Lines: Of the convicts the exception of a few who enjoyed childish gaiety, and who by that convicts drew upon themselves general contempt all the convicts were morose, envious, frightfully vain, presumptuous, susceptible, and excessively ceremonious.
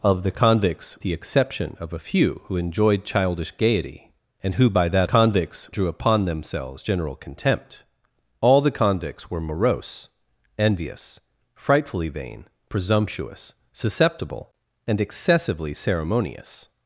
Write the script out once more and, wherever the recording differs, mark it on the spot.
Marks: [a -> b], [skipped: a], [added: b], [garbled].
Of the convicts the exception of a few who enjoyed childish gaiety, and who by that convicts drew upon themselves general contempt all the convicts were morose, envious, frightfully vain, presumptuous, susceptible, and excessively ceremonious.